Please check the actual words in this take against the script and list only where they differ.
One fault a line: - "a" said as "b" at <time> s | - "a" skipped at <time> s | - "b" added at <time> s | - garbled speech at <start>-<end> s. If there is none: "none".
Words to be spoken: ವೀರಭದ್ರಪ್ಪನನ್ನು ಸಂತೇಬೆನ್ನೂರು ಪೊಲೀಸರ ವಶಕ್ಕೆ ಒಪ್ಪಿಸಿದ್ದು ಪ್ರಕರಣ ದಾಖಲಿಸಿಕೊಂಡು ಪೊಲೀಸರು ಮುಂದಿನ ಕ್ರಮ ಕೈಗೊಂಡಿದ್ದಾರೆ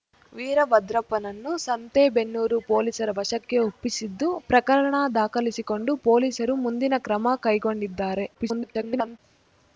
- garbled speech at 8.3-9.2 s